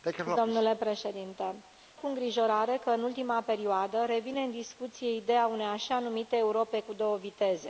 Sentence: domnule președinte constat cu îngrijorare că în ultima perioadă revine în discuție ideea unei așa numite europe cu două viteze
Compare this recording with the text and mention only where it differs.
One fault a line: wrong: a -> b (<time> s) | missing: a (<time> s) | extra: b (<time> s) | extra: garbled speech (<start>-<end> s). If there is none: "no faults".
missing: constat (1.6 s)